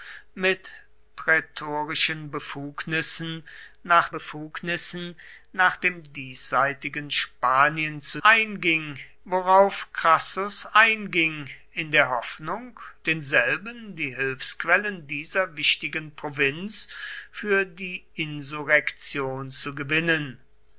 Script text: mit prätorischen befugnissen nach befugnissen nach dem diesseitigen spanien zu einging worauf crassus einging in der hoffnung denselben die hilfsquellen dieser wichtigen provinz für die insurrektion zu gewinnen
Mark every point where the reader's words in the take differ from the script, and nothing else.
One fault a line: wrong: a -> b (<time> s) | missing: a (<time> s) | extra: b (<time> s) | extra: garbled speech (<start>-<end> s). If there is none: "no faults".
no faults